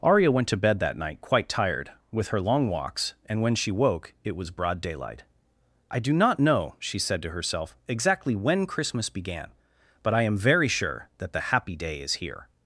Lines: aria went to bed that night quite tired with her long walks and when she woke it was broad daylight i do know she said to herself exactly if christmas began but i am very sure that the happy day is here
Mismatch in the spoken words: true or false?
true